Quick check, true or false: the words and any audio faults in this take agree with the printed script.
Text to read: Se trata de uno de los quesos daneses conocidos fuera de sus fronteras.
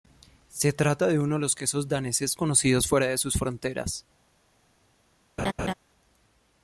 false